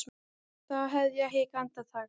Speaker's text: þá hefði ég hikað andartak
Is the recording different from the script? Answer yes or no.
no